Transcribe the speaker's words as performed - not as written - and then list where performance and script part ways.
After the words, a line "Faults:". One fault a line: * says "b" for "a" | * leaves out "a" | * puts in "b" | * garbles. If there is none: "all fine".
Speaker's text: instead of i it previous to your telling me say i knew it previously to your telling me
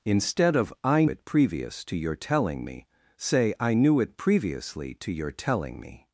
instead of i it previous to your telling me say i knew it previously to your telling me
Faults:
all fine